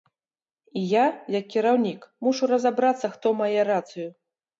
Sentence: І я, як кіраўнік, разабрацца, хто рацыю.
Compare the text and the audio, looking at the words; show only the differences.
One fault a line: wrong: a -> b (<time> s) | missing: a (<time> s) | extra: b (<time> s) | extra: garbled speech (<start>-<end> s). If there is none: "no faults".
extra: мушу (2.3 s)
extra: мае (3.4 s)